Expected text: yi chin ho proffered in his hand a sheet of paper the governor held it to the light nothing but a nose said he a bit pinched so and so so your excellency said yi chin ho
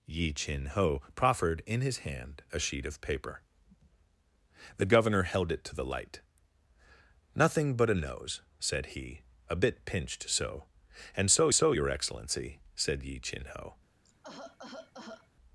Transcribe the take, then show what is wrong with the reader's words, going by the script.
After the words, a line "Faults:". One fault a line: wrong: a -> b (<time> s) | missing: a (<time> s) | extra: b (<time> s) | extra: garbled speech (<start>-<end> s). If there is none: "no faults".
yi chin ho proffered in his hand a sheet of paper the governor held it to the light nothing but a nose said he a bit pinched so and so so your excellency said yi chin ho
Faults:
no faults